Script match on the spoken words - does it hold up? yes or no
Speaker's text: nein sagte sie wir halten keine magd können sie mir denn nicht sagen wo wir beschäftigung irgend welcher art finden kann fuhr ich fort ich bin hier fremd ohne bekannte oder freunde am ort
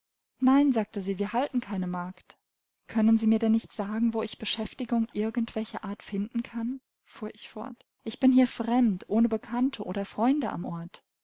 no